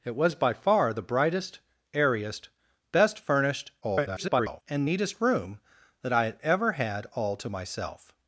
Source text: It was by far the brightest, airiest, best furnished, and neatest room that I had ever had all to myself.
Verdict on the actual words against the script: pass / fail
fail